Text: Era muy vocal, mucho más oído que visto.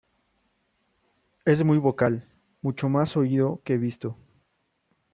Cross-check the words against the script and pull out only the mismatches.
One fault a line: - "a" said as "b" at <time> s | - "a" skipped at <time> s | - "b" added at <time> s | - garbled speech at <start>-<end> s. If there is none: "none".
- "Era" said as "Es" at 1.4 s